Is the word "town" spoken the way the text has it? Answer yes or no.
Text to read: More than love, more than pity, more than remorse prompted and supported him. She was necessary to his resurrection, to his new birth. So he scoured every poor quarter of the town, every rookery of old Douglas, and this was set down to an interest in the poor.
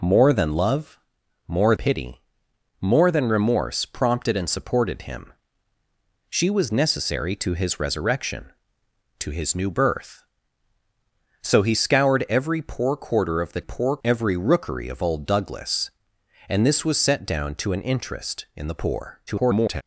no